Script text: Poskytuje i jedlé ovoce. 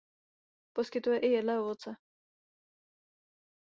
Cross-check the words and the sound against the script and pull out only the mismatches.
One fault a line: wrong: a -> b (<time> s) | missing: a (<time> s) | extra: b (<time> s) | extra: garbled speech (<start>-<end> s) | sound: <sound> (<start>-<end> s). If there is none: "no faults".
no faults